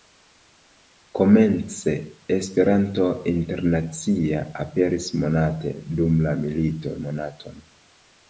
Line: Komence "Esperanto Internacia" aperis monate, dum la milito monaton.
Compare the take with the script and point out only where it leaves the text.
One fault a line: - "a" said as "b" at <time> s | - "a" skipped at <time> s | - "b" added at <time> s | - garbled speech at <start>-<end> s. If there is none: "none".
none